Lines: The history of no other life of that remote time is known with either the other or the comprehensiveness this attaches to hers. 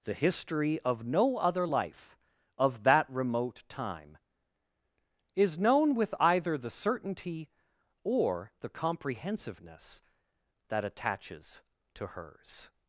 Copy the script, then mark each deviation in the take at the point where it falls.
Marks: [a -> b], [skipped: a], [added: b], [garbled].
The history of no other life of that remote time is known with either the [other -> certainty] or the comprehensiveness [this -> that] attaches to hers.